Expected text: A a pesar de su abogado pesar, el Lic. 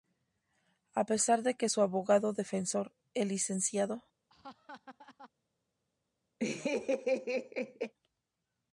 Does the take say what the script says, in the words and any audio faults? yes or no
no